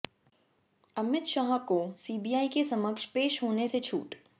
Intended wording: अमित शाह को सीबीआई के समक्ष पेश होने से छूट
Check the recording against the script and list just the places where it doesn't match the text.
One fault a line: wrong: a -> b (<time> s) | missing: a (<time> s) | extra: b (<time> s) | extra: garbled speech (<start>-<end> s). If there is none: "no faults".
no faults